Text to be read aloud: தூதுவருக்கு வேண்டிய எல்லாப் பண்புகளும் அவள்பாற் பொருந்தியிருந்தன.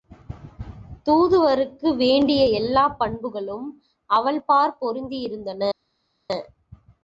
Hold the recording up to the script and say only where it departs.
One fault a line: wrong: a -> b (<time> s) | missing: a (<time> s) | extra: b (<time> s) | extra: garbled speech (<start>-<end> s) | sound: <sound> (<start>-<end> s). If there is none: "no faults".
no faults